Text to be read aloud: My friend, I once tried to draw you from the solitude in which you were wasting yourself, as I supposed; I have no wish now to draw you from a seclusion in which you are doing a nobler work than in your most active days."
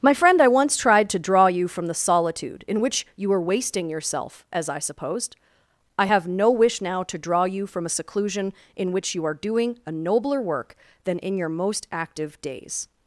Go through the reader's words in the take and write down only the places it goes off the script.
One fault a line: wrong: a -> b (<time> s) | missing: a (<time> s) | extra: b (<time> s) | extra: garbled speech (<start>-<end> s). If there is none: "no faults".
no faults